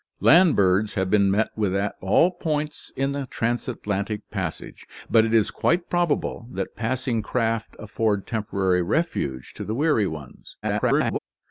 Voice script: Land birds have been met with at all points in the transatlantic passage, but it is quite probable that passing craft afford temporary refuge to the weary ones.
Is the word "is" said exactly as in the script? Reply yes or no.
yes